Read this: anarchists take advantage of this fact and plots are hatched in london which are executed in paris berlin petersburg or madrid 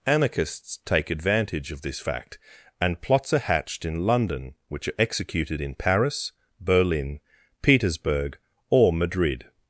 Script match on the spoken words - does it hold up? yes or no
yes